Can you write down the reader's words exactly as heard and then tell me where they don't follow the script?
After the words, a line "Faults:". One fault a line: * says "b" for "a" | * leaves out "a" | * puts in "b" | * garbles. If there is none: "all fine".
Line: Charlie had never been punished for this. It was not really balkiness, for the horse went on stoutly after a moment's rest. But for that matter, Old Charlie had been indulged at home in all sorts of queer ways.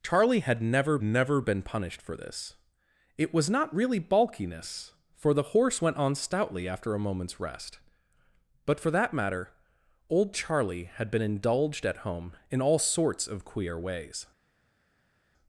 Charlie had never never been punished for this. It was not really balkiness, for the horse went on stoutly after a moment's rest. But for that matter, Old Charlie had been indulged at home in all sorts of queer ways.
Faults:
* puts in "never"